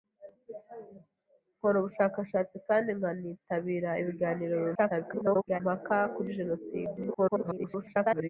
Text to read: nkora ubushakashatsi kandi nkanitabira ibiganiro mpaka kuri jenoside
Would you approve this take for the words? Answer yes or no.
no